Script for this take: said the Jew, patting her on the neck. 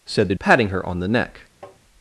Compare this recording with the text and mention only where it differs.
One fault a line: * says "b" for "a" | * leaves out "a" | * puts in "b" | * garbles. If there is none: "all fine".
* leaves out "Jew"